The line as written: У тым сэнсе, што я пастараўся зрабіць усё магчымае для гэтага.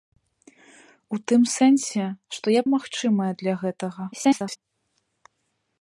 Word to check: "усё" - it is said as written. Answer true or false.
false